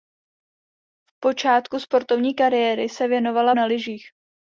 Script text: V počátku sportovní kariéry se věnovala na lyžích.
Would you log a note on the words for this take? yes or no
no